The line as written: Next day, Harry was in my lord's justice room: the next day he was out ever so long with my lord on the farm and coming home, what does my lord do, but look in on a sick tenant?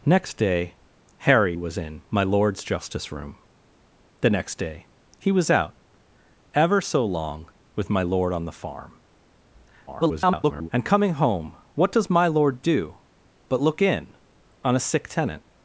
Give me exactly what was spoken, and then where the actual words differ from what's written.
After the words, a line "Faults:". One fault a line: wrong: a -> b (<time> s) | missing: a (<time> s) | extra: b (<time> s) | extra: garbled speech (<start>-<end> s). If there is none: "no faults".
Next day, Harry was in my lord's justice room: the next day he was out ever so long with my lord on the farm [garbled] and coming home, what does my lord do, but look in on a sick tenant?
Faults:
extra: garbled speech (9.9-10.7 s)